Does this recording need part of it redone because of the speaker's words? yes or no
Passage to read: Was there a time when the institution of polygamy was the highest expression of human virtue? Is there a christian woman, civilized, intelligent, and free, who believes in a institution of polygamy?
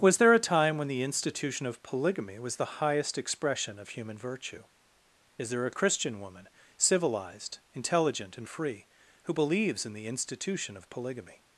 yes